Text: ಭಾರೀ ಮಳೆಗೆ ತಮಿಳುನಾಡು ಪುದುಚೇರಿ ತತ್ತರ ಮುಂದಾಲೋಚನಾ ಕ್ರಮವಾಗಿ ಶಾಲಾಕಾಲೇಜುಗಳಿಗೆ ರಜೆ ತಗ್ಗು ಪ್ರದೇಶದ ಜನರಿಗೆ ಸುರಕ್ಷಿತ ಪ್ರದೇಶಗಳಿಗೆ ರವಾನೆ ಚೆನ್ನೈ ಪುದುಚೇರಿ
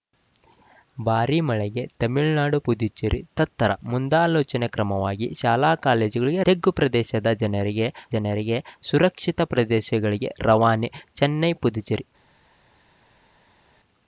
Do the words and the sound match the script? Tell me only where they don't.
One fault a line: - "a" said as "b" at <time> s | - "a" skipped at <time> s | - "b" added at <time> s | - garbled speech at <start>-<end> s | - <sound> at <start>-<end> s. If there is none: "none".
- "ರಜೆ" skipped at 6.4 s
- "ಜನರಿಗೆ" added at 8.1 s